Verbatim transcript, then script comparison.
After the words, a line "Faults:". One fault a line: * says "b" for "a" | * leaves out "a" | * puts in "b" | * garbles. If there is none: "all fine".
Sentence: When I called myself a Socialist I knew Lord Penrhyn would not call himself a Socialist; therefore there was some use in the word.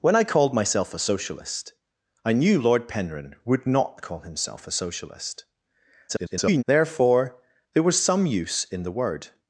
When I called myself a Socialist I knew Lord Penrhyn would not call himself a Socialist; [garbled] therefore there was some use in the word.
Faults:
* garbles